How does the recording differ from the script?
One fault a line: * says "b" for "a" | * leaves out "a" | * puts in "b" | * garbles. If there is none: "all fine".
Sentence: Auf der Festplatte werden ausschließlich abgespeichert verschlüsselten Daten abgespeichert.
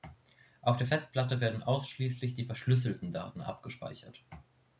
* says "die" for "abgespeichert"